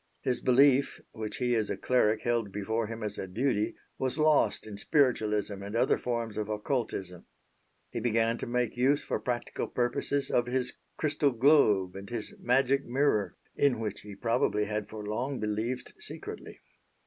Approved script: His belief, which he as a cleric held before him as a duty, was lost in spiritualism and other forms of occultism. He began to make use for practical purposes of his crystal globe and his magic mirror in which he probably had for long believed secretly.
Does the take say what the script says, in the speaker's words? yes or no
yes